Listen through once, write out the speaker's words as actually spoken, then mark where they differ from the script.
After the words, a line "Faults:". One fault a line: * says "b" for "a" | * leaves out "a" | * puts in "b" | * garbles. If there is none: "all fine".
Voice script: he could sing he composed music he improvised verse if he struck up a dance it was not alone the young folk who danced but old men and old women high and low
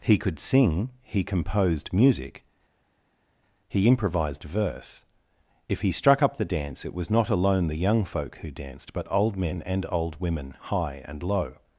he could sing he composed music he improvised verse if he struck up the dance it was not alone the young folk who danced but old men and old women high and low
Faults:
* says "the" for "a"